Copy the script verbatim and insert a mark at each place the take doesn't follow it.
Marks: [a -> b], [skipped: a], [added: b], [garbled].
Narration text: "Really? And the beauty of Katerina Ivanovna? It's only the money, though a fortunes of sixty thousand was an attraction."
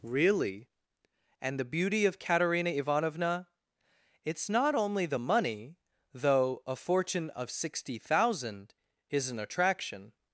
"Really? And the beauty of Katerina Ivanovna? It's [added: not] only the money, though a [fortunes -> fortune] of sixty thousand [was -> is] an attraction."